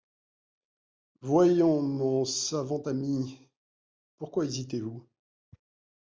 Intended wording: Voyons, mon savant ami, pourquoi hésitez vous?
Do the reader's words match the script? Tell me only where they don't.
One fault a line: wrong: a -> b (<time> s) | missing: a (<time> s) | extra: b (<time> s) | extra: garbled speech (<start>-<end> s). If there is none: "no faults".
no faults